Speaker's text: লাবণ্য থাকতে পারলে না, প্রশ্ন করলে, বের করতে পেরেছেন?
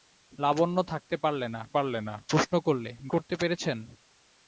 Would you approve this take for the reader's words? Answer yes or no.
no